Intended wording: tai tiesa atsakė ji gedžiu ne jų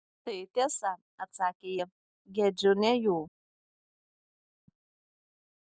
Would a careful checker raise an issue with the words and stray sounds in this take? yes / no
no